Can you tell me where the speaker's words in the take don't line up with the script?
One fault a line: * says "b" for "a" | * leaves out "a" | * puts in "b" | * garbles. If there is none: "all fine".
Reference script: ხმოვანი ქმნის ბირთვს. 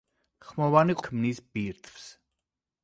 all fine